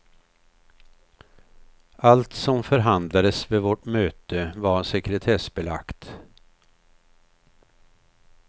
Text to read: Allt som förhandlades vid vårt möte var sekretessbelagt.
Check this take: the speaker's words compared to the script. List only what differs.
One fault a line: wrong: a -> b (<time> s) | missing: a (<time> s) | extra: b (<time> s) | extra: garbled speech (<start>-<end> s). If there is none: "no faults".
no faults